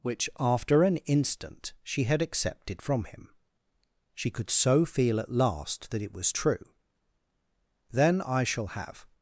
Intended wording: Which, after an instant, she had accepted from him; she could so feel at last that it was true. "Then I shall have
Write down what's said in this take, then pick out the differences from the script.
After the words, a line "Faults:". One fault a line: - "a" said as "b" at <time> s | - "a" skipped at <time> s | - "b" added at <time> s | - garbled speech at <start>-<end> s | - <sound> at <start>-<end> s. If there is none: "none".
Which, after an instant, she had accepted from him; she could so feel at last that it was true. "Then I shall have
Faults:
none